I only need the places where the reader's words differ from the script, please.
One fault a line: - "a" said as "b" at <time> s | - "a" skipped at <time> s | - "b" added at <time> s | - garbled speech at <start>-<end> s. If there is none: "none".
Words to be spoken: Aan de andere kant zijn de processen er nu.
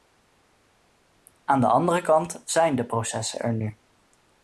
none